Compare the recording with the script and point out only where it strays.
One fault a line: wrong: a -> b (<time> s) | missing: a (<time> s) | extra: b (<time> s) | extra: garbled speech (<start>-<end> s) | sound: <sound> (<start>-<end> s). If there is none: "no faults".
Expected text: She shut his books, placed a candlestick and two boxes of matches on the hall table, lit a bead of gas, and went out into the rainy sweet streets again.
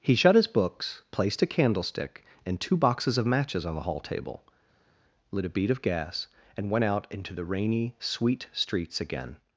wrong: She -> He (0.0 s)